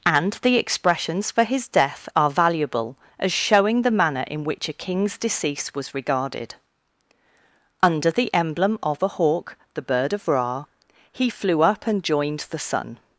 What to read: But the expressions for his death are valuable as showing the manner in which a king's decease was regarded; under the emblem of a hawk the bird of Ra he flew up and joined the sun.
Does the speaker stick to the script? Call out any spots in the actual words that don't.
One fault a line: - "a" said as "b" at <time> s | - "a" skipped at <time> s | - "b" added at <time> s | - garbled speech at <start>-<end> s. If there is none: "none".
- "But" said as "And" at 0.1 s